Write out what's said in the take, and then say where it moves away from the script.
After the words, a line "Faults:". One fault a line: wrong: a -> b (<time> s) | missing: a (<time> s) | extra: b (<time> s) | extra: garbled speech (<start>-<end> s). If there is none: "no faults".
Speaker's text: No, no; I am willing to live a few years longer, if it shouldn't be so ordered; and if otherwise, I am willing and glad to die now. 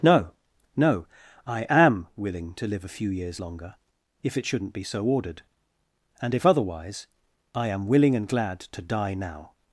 No, no; I am willing to live a few years longer, if it shouldn't be so ordered; and if otherwise, I am willing and glad to die now.
Faults:
no faults